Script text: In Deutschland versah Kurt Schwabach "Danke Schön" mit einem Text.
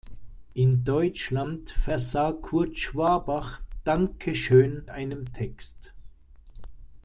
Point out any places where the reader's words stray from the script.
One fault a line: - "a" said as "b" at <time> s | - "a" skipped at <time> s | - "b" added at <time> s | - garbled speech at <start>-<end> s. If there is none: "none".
- "mit" skipped at 4.8 s